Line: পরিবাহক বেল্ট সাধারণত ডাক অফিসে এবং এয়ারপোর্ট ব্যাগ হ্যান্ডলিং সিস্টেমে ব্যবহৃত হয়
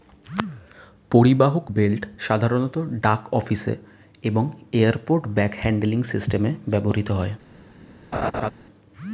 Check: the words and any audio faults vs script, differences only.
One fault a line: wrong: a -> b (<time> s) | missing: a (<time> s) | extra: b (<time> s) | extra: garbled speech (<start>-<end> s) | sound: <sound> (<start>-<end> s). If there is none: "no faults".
sound: laugh (8.1-8.5 s)